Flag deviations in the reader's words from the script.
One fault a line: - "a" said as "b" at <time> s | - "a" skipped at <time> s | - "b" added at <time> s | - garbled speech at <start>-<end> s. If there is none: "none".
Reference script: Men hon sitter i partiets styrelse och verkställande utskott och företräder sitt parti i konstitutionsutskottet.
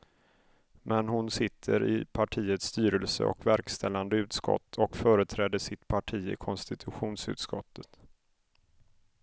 none